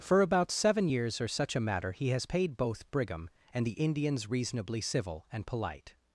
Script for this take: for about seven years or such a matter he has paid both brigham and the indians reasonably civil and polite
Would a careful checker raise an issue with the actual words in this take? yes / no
no